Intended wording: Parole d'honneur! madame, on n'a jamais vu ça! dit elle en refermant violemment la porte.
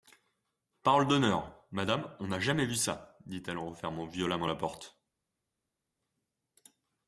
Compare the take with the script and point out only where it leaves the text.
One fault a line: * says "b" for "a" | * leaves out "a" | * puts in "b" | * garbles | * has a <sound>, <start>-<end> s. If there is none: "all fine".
all fine